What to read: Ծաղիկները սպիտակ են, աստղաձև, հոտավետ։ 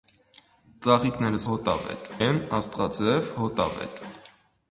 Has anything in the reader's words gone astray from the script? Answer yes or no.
yes